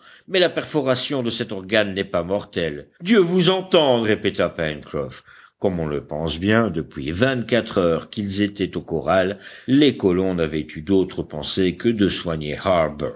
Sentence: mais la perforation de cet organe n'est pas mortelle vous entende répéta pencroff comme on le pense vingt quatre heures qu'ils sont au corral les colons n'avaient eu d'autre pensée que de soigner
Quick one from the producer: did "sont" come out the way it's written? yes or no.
no